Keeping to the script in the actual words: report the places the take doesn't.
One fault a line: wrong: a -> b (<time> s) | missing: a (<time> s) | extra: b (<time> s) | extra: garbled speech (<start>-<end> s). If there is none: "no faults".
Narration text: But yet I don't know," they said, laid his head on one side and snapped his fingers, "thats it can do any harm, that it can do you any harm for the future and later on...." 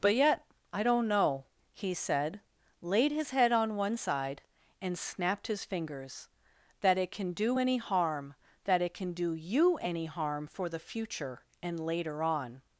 wrong: they -> he (1.7 s)
wrong: thats -> that (6.8 s)